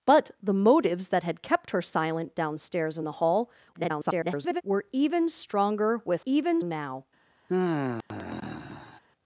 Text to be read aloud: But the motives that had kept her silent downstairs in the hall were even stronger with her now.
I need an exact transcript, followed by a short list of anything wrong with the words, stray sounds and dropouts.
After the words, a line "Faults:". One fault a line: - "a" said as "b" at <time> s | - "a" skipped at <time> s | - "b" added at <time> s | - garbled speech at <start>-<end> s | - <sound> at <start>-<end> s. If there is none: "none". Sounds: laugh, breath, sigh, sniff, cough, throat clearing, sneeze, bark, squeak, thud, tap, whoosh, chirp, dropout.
But the motives that had kept her silent downstairs in the hall [garbled] were even stronger with even now.
Faults:
- garbled speech at 3.7-4.6 s
- "her" said as "even" at 6.2 s
- sigh at 7.5-9.0 s